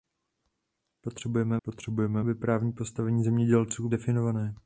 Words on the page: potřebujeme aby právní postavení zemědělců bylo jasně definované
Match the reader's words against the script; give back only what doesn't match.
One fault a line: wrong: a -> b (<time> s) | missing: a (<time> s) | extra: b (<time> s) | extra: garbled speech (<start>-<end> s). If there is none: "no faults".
extra: potřebujeme (1.6 s)
missing: bylo jasně (3.9 s)